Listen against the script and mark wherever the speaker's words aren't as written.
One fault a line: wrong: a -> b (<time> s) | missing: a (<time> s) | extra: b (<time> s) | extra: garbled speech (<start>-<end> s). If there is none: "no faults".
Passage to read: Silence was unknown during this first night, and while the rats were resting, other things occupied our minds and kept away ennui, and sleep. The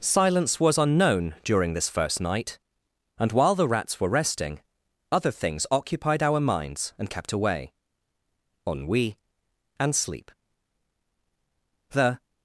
no faults